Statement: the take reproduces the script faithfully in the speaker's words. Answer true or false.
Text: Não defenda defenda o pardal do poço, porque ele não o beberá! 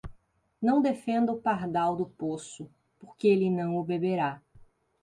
false